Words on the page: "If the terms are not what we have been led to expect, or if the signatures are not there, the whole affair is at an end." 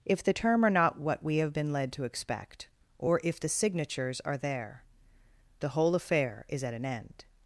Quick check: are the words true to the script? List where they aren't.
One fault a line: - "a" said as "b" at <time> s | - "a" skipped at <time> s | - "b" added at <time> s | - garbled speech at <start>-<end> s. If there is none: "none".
- "terms" said as "term" at 0.3 s
- "not" skipped at 4.4 s